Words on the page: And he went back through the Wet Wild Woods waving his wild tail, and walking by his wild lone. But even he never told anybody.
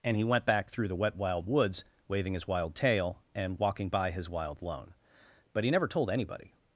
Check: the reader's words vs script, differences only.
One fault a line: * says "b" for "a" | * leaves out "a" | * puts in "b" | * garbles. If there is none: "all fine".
* leaves out "even"